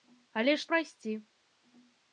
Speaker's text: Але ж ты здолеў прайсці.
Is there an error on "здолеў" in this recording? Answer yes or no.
yes